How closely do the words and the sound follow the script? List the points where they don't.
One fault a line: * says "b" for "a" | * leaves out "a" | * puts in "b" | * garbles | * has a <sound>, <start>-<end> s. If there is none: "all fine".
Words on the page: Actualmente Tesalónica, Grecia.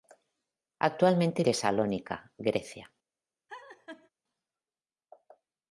* has a laugh, 3.5-4.1 s